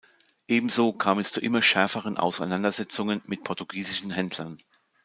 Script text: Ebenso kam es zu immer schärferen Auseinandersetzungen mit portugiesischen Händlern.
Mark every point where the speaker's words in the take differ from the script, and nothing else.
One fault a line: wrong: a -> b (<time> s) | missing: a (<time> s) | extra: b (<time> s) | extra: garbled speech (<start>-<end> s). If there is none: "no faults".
no faults